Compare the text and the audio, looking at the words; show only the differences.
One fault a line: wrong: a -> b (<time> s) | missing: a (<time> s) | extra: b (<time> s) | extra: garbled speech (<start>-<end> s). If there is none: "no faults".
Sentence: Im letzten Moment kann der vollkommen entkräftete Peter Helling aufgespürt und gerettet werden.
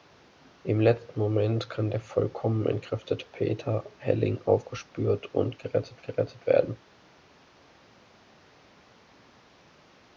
extra: gerettet (6.0 s)